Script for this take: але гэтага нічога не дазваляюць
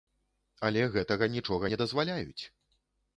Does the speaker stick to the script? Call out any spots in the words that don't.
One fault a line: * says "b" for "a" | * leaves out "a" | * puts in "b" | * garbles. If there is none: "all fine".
all fine